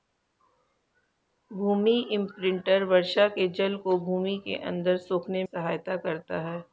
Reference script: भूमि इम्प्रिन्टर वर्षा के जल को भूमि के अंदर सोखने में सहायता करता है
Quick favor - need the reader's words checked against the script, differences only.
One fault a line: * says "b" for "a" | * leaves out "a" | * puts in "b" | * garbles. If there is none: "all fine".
* leaves out "में"